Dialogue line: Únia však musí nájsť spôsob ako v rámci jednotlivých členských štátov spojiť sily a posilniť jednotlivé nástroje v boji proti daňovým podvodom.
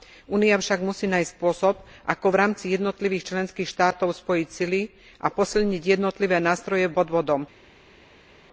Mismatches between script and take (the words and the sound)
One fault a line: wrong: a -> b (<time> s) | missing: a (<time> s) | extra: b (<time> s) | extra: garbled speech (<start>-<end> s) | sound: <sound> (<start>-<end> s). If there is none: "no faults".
missing: boji proti daňovým (6.9 s)